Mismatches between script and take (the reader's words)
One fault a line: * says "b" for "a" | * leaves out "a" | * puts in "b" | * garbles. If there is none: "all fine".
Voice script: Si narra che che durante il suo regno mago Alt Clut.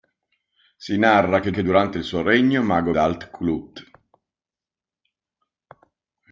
all fine